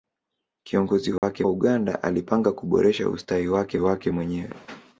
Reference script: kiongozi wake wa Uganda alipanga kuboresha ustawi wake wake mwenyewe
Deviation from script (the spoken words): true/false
false